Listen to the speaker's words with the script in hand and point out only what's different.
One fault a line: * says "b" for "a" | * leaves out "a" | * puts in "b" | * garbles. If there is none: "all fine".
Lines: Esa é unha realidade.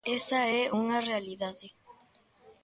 all fine